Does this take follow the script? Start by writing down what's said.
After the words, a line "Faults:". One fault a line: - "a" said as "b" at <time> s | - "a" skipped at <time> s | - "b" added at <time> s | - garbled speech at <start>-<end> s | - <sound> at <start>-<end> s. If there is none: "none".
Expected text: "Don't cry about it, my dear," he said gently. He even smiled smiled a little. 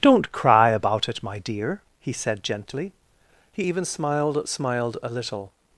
"Don't cry about it, my dear," he said gently. He even smiled smiled a little.
Faults:
none